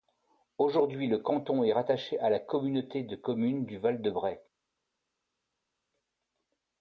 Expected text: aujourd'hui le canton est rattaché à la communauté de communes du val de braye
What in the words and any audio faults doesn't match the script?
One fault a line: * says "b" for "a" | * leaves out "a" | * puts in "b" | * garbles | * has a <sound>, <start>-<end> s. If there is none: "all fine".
all fine